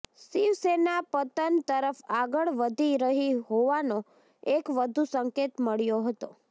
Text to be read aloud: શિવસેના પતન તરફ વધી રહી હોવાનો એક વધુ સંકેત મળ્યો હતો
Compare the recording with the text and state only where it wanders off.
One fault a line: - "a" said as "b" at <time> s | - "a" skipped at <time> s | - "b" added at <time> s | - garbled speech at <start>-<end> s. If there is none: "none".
- "આગળ" added at 2.1 s